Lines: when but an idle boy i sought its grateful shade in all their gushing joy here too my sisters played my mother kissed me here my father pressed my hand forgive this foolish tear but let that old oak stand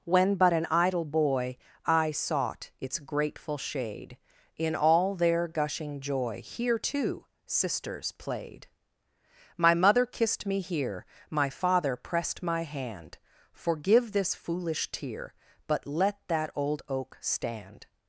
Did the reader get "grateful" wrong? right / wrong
right